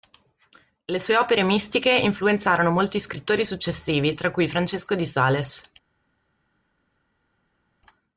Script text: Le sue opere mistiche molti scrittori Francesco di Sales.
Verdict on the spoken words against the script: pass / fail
fail